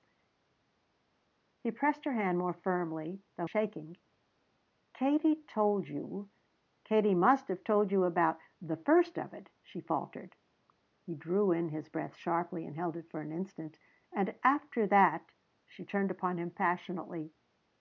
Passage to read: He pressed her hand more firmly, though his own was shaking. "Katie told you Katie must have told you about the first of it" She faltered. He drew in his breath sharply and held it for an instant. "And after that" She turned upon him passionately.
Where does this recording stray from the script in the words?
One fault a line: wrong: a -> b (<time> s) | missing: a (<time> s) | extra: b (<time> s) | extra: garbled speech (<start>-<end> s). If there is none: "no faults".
missing: his own was (3.5 s)